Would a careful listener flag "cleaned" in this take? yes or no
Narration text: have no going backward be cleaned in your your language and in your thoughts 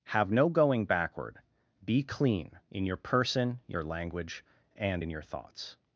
yes